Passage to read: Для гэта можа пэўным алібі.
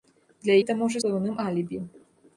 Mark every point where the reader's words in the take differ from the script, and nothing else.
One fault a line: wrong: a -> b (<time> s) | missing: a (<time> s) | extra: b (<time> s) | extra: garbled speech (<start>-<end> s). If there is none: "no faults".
no faults